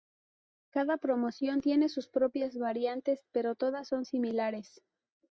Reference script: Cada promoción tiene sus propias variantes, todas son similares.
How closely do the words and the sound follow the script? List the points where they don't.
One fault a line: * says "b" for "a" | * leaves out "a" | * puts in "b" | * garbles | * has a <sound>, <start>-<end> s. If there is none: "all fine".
* puts in "pero"